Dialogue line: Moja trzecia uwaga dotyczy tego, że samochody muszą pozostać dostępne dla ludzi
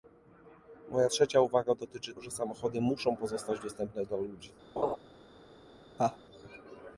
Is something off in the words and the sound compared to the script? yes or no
yes